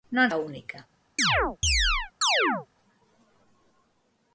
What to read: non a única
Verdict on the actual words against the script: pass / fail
pass